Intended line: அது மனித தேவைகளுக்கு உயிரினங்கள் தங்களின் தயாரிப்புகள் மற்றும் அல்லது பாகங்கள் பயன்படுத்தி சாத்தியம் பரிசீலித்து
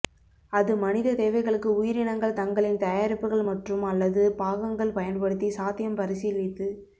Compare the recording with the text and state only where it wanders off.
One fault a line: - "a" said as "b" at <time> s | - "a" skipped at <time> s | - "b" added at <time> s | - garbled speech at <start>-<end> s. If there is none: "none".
none